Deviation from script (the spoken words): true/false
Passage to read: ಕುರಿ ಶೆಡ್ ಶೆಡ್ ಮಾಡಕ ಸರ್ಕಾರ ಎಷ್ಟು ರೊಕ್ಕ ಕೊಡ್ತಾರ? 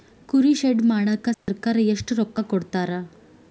true